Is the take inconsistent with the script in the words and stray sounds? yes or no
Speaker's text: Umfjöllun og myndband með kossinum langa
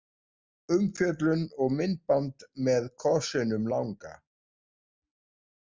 no